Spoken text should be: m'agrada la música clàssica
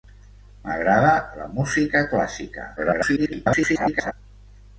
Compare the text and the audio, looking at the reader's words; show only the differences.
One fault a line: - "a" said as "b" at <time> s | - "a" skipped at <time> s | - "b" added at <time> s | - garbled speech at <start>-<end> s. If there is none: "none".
- garbled speech at 2.8-4.1 s